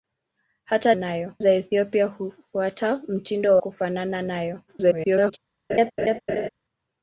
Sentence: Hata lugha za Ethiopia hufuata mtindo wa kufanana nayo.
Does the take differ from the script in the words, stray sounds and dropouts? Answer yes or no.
yes